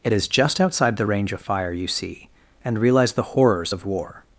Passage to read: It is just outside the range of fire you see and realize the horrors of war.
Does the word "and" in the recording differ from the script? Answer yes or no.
no